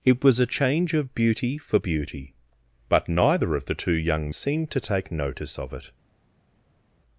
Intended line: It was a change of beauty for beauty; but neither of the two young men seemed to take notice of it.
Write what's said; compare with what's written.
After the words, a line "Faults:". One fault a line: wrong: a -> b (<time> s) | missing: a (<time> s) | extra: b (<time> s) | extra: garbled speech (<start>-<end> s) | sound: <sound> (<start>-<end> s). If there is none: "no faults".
It was a change of beauty for beauty; but neither of the two young seemed to take notice of it.
Faults:
missing: men (4.3 s)